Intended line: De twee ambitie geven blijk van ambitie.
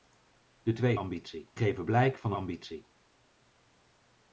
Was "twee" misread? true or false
false